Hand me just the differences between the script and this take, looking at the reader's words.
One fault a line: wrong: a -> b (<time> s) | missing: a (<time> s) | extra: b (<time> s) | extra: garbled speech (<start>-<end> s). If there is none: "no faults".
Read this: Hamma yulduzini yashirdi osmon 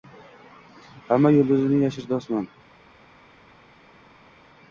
no faults